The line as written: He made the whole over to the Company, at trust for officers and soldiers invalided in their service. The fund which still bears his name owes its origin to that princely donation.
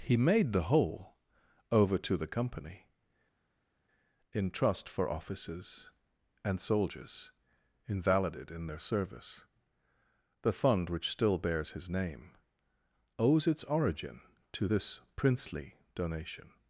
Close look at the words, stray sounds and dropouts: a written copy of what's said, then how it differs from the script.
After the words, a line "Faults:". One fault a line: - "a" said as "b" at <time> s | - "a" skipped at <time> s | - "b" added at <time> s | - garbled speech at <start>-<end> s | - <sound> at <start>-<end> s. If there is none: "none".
He made the whole over to the Company, in trust for officers and soldiers invalided in their service. The fund which still bears his name owes its origin to this princely donation.
Faults:
- "at" said as "in" at 4.3 s
- "that" said as "this" at 14.6 s